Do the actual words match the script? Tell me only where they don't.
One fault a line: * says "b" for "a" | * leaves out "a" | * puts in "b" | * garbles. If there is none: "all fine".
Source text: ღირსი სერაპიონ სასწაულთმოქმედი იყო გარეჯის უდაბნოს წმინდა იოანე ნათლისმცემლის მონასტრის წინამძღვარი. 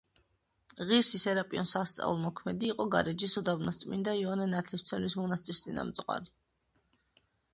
all fine